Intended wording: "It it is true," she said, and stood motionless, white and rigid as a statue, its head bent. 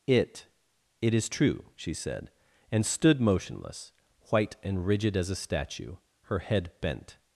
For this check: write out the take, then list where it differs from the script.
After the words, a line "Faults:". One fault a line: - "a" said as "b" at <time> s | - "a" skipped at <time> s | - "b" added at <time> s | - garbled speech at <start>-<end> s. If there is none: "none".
"It it is true," she said, and stood motionless, white and rigid as a statue, her head bent.
Faults:
- "its" said as "her" at 6.2 s